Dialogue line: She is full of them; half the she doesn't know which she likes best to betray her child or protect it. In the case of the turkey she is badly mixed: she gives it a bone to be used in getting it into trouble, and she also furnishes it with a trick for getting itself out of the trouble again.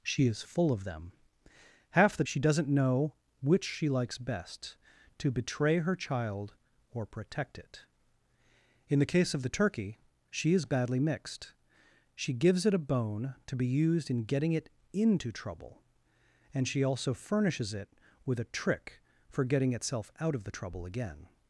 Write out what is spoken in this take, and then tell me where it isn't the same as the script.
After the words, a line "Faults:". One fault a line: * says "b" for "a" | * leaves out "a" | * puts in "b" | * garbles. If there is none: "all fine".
She is full of them; half the she doesn't know which she likes best to betray her child or protect it. In the case of the turkey she is badly mixed: she gives it a bone to be used in getting it into trouble, and she also furnishes it with a trick for getting itself out of the trouble again.
Faults:
all fine